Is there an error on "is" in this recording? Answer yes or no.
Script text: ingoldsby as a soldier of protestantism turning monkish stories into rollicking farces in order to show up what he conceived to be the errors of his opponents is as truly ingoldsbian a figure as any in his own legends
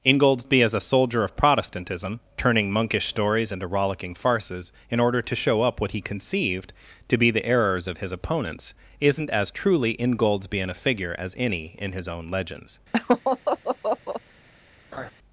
yes